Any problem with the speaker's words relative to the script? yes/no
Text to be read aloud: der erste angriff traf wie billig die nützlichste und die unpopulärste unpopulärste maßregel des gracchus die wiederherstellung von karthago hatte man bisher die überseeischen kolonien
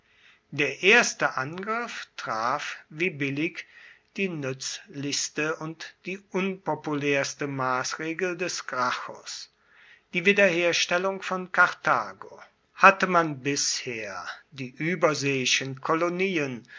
yes